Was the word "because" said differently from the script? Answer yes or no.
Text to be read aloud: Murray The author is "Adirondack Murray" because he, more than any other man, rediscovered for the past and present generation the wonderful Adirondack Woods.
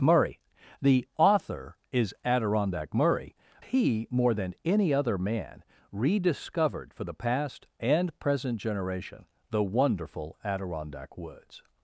yes